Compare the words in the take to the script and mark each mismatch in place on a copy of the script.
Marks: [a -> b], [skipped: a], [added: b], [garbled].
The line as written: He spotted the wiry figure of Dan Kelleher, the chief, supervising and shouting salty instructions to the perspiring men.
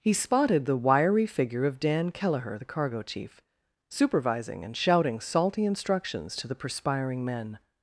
He spotted the wiry figure of Dan Kelleher, the [added: cargo] chief, supervising and shouting salty instructions to the perspiring men.